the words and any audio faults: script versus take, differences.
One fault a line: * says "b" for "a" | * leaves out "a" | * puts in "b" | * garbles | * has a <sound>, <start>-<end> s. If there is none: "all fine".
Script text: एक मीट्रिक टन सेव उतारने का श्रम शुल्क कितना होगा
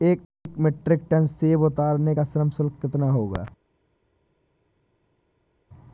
all fine